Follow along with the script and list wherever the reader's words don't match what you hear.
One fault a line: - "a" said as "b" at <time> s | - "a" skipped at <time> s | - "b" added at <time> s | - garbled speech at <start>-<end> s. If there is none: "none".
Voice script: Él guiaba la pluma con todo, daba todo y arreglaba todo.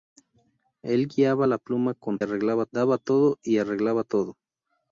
- "todo" said as "arreglaba" at 2.2 s